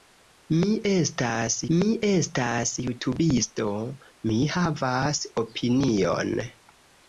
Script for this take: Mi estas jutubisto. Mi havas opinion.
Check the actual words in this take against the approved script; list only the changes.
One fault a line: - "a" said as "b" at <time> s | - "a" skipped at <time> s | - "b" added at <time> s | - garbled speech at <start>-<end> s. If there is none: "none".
- "mi estas" added at 1.7 s